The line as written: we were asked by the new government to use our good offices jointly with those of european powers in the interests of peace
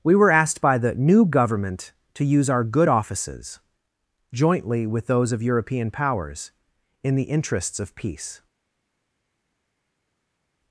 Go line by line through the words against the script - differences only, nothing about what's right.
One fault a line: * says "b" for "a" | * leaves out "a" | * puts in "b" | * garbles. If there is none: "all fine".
all fine